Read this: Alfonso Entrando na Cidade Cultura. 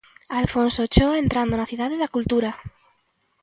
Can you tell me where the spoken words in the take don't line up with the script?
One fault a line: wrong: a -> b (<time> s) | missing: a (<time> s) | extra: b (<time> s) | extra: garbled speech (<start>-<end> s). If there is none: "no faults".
extra: Ochoa (0.9 s)
extra: da (2.0 s)